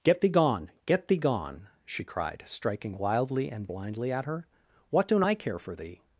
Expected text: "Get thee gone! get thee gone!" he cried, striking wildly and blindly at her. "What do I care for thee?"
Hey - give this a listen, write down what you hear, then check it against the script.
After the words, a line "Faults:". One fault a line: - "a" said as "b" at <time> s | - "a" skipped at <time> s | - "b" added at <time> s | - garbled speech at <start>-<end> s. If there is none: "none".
"Get thee gone! get thee gone!" she cried, striking wildly and blindly at her. "What don't I care for thee?"
Faults:
- "he" said as "she" at 1.9 s
- "do" said as "don't" at 5.1 s